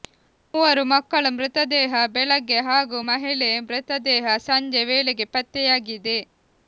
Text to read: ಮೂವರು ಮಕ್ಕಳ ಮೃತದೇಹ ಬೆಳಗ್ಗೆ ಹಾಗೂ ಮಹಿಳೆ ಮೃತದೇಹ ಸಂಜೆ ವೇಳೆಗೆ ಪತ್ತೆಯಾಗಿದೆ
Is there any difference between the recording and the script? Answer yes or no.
no